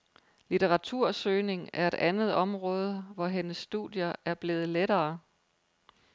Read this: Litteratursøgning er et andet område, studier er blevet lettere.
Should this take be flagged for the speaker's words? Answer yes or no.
yes